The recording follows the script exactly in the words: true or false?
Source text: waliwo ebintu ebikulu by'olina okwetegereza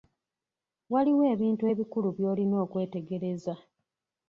true